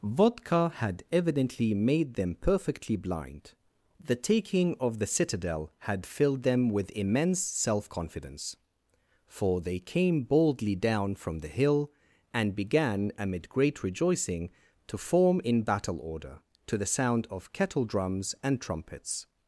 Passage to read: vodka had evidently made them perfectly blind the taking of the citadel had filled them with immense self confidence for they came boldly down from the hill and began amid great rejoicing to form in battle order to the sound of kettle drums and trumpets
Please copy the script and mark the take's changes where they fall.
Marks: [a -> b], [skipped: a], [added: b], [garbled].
vodka had evidently made them perfectly blind the taking of the citadel had filled them with immense self confidence for they came boldly down from the hill and began amid great rejoicing to form in battle order to the sound of kettle drums and trumpets